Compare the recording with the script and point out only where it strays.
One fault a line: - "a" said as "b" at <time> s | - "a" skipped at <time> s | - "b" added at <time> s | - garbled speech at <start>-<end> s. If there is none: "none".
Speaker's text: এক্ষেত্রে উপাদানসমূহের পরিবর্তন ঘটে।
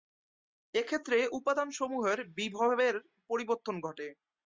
- "বিভবের" added at 2.4 s